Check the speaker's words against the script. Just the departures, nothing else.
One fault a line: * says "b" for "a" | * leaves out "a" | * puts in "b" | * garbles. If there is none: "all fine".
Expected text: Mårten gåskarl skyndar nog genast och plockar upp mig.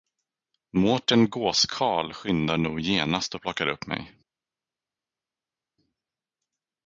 all fine